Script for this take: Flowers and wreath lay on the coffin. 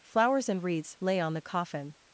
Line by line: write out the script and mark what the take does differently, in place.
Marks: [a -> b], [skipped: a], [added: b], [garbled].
Flowers and [wreath -> wreaths] lay on the coffin.